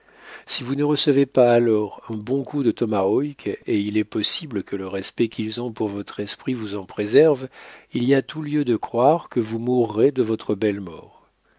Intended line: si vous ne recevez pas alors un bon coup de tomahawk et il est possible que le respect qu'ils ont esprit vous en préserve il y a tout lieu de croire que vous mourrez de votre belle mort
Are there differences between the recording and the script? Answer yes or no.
yes